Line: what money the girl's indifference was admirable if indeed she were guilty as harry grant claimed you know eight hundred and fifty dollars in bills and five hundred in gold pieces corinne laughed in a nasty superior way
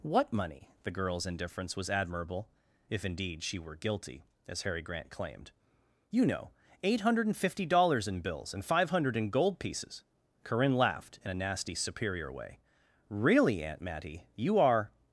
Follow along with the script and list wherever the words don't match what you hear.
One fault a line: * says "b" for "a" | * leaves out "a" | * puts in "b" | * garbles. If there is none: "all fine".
* puts in "really aunt mattie you are"